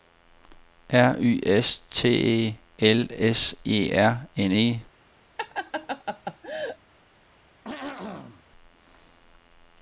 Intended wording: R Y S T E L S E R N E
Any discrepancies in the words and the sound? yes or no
yes